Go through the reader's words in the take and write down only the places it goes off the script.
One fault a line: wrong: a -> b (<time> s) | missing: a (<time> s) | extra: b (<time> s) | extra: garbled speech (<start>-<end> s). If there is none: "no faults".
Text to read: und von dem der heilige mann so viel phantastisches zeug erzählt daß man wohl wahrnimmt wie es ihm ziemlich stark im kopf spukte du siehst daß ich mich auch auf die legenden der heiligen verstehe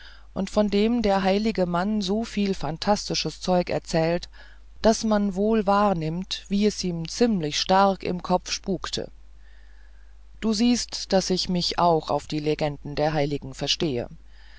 no faults